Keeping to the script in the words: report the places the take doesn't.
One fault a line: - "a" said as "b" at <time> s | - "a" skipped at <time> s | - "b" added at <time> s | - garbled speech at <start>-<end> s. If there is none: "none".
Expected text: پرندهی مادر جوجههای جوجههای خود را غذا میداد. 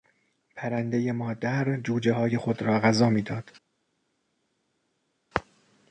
- "جوجههای" skipped at 2.4 s